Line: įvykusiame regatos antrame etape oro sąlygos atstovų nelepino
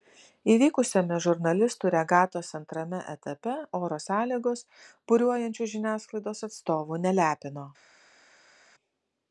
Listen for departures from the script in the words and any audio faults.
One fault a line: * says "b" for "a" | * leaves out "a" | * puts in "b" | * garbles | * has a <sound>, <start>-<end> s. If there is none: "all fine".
* puts in "žurnalistų"
* puts in "buriuojančių žiniasklaidos"